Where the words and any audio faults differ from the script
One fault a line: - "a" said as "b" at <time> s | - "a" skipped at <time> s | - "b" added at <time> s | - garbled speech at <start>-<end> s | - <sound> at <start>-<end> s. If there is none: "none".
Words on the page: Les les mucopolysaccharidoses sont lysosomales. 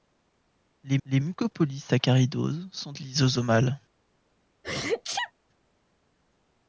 - sneeze at 4.6-5.3 s